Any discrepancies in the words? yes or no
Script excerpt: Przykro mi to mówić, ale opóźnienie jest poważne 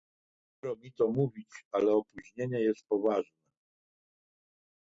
no